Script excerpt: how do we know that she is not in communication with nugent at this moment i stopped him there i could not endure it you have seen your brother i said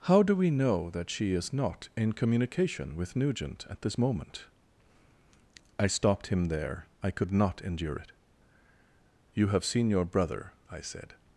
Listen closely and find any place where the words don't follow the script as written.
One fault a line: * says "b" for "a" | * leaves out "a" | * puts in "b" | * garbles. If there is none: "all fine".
all fine